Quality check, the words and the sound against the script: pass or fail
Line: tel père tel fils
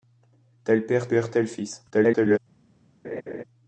fail